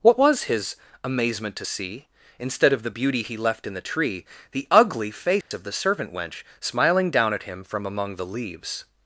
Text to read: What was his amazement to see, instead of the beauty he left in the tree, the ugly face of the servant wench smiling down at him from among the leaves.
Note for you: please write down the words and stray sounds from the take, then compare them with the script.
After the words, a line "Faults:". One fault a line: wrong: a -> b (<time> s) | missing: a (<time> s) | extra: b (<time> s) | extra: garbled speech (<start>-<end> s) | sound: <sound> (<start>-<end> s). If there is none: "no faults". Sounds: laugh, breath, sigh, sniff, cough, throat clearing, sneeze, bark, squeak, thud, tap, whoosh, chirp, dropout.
What was his amazement to see, instead of the beauty he left in the tree, the ugly face of the servant wench smiling down at him from among the leaves.
Faults:
sound: dropout (5.4-5.5 s)